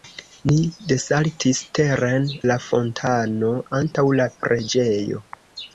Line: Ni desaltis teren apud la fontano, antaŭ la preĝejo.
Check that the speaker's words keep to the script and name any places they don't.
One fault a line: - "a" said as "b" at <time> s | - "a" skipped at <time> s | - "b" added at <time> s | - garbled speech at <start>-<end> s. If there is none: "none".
- "apud" skipped at 2.2 s